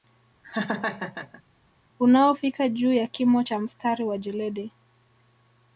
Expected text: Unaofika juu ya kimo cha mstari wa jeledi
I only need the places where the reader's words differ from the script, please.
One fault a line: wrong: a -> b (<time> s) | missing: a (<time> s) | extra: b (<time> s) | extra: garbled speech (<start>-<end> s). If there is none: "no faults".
no faults